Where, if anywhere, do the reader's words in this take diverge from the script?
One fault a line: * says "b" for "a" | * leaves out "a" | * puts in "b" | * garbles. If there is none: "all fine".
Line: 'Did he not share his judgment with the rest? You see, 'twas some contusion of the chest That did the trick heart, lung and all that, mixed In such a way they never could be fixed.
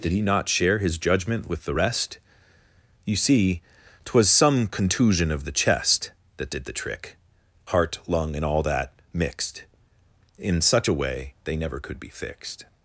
all fine